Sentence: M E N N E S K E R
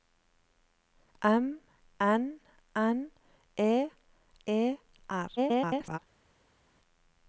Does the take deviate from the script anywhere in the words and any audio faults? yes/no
yes